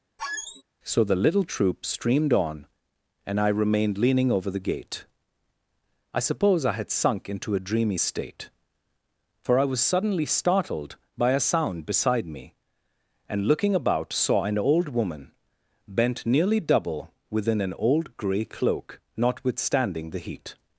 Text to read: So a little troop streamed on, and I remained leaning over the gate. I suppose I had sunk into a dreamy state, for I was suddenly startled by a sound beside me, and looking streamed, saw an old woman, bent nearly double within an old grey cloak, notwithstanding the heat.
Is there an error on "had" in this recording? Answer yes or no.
no